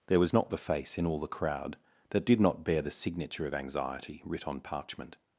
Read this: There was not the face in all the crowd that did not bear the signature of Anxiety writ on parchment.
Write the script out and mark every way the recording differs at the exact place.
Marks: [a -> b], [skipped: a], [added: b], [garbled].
There was not the face in all the crowd that did not bear the signature of Anxiety writ on parchment.